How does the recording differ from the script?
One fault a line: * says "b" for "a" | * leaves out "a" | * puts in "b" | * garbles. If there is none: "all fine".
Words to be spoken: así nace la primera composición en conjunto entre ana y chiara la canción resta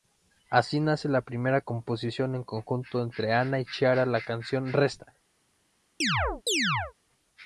all fine